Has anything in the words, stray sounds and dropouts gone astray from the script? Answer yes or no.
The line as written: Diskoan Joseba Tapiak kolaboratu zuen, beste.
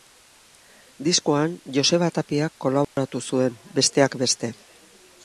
yes